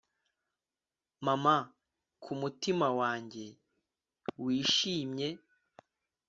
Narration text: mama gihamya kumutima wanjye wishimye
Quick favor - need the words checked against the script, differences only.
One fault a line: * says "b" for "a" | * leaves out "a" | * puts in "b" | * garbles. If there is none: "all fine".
* leaves out "gihamya"